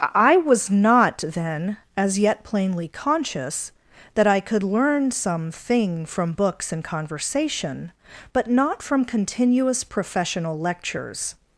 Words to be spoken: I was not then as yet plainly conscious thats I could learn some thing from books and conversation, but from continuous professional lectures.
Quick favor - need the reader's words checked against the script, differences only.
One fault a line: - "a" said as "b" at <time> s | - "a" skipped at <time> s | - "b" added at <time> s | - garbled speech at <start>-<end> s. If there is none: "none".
- "thats" said as "that" at 4.1 s
- "not" added at 8.5 s